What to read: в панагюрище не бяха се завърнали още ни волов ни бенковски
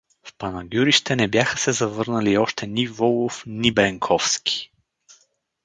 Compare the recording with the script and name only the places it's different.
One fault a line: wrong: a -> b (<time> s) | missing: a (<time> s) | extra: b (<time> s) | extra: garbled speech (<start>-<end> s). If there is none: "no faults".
no faults